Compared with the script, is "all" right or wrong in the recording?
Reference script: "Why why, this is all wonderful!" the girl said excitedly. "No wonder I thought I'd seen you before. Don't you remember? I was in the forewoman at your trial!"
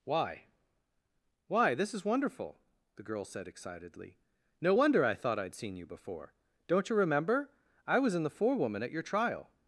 wrong